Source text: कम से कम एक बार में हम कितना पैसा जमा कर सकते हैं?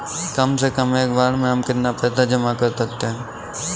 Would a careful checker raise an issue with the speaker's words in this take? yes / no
no